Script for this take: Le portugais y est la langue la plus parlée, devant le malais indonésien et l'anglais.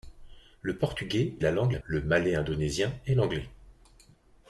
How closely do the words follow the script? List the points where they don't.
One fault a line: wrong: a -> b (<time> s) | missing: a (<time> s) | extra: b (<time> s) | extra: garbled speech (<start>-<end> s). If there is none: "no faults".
missing: y (1.4 s)
missing: plus parlée devant (1.8 s)